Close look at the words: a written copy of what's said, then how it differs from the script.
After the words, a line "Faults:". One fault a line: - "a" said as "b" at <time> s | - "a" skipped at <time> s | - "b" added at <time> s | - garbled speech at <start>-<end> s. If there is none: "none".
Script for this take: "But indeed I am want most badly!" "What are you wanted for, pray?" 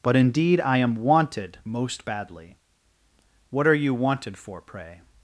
"But indeed I am wanted most badly!" "What are you wanted for, pray?"
Faults:
- "want" said as "wanted" at 0.9 s